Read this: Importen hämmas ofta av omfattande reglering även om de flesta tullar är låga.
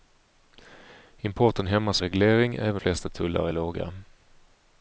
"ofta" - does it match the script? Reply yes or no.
no